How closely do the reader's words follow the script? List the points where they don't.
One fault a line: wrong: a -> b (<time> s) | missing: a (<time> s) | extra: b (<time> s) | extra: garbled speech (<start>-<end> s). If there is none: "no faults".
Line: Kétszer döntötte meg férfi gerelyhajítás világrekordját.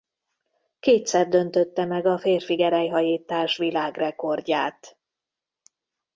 extra: a (2.0 s)